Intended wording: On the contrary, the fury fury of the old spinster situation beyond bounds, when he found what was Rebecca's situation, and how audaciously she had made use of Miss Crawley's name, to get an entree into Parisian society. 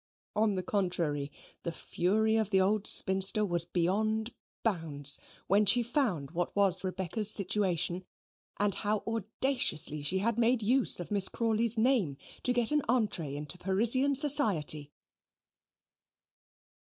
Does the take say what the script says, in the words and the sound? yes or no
no